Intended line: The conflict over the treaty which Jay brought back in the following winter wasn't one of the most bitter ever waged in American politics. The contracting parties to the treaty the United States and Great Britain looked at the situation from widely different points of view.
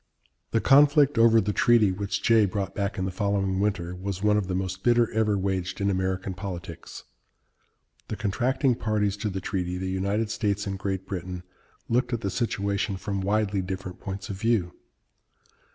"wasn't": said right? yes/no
no